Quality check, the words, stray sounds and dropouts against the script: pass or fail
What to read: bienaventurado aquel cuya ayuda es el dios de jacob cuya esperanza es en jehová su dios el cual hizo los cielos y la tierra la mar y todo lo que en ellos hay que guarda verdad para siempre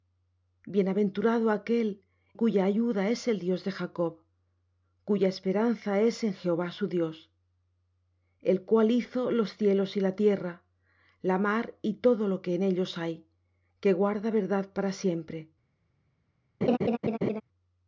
fail